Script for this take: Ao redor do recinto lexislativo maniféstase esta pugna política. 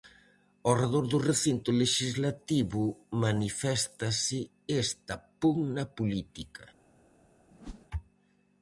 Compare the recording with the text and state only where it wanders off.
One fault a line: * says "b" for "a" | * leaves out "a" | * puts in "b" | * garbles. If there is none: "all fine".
all fine